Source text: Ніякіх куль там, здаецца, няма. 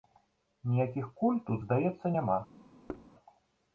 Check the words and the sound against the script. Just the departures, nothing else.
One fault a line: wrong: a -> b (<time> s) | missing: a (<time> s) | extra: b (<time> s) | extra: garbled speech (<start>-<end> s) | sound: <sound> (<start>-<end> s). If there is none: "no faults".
wrong: там -> тут (1.5 s)
sound: thud (2.9-3.1 s)